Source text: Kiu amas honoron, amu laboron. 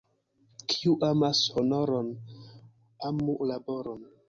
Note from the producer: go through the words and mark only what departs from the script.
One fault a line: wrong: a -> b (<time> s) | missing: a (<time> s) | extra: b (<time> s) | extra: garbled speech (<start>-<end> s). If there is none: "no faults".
no faults